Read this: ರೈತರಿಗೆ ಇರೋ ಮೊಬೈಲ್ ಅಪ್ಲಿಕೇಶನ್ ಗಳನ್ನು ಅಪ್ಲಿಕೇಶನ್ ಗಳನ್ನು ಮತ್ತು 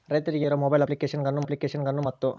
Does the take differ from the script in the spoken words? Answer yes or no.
no